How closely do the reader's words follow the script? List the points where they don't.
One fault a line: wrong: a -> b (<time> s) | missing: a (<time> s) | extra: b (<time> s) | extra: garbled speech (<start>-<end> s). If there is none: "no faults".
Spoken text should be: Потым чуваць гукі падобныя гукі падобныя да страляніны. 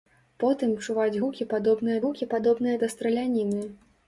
no faults